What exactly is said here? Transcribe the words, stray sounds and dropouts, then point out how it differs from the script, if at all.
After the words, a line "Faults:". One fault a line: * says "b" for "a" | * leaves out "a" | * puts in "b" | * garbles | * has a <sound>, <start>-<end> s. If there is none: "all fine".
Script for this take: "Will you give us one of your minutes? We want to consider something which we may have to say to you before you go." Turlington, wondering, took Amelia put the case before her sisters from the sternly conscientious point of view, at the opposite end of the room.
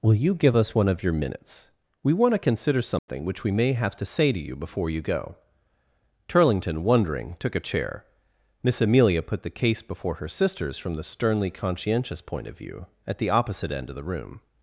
"Will you give us one of your minutes? We want to consider something which we may have to say to you before you go." Turlington, wondering, took a chair. Miss Amelia put the case before her sisters from the sternly conscientious point of view, at the opposite end of the room.
Faults:
* has a dropout, 3.0-3.1 s
* puts in "a chair Miss"